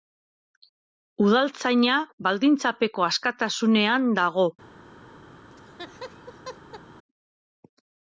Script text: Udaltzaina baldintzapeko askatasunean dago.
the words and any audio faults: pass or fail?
fail